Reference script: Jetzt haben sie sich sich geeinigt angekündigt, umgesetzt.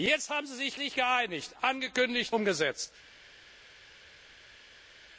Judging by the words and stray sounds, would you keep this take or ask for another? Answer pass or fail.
pass